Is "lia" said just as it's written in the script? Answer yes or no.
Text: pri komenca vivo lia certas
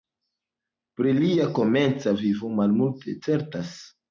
no